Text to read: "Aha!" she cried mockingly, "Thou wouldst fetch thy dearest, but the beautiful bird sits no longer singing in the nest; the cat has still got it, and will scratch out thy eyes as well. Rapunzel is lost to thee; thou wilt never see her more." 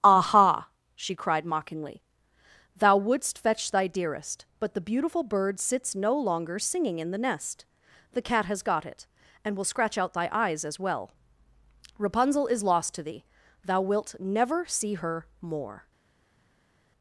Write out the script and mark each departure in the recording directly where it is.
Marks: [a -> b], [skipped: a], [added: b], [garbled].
"Aha!" she cried mockingly, "Thou wouldst fetch thy dearest, but the beautiful bird sits no longer singing in the nest; the cat has [skipped: still] got it, and will scratch out thy eyes as well. Rapunzel is lost to thee; thou wilt never see her more."